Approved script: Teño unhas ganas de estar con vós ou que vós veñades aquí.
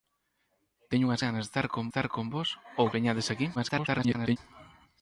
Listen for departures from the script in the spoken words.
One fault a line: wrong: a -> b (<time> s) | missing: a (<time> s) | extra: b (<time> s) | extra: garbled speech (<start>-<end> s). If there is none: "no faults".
extra: estar con (1.9 s)
missing: que vós (2.9 s)
extra: garbled speech (3.5-4.4 s)